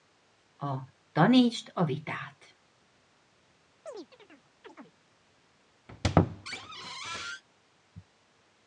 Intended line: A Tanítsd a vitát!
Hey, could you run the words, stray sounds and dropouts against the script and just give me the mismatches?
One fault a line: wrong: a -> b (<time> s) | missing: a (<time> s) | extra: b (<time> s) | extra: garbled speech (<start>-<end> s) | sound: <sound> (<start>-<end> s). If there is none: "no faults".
sound: chirp (3.9-5.0 s)
sound: squeak (5.9-7.4 s)